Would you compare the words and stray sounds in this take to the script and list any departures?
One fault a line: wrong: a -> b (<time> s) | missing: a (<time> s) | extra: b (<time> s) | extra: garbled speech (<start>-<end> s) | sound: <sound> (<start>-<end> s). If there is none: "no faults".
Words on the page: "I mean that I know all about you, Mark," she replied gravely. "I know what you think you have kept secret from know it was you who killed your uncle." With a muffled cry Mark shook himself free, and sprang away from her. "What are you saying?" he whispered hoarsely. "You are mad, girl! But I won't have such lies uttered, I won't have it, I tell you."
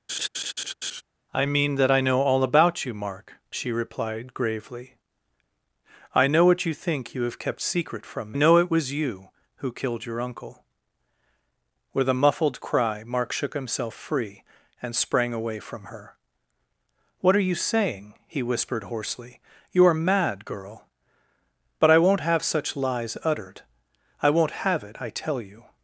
sound: laugh (0.1-1.0 s)